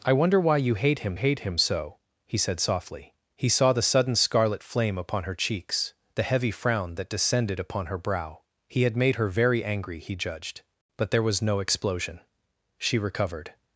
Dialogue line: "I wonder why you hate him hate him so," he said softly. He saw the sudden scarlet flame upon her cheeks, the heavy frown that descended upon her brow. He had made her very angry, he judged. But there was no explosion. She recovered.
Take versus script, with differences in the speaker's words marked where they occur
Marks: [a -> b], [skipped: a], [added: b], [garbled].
"I wonder why you hate him hate him so," he said softly. He saw the sudden scarlet flame upon her cheeks, the heavy frown that descended upon her brow. He had made her very angry, he judged. But there was no explosion. She recovered.